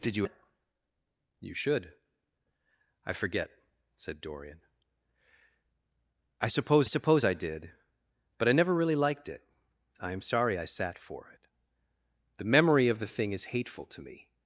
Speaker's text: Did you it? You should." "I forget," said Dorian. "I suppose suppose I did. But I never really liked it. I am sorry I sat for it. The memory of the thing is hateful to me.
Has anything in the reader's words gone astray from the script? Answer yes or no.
no